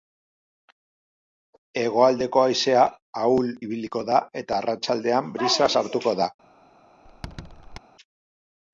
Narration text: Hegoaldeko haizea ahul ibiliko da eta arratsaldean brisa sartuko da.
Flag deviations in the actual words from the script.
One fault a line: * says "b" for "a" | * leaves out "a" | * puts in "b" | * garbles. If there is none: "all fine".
all fine